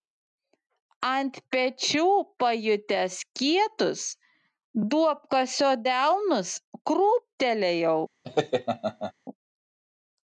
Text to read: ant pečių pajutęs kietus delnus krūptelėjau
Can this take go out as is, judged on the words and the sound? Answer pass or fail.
fail